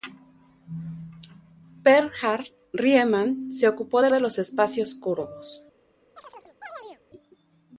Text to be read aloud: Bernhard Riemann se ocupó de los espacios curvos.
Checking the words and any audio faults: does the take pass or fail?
fail